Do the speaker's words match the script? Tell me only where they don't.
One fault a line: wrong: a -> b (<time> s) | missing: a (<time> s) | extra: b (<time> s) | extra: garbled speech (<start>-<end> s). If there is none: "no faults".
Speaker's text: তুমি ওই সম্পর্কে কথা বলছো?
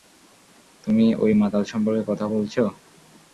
extra: মাতাল (1.4 s)